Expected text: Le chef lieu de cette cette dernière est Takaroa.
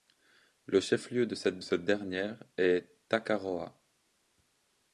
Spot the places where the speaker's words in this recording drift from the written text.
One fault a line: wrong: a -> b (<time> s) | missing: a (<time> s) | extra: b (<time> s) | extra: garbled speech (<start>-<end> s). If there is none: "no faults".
no faults